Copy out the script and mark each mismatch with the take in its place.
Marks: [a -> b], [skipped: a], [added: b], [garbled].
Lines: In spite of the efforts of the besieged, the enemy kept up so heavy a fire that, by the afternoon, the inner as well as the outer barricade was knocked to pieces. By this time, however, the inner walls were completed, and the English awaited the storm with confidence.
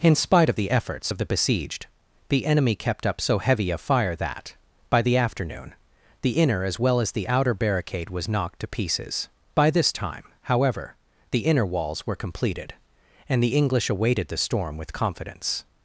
In spite of the efforts of the besieged, the enemy kept up so heavy a fire that, by the afternoon, the inner as well as the outer barricade was knocked to pieces. By this time, however, the inner walls were completed, and the English awaited the storm with confidence.